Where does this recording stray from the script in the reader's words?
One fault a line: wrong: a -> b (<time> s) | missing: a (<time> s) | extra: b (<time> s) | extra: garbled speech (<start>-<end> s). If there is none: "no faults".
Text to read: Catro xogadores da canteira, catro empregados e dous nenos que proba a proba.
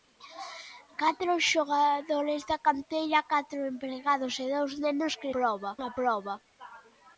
no faults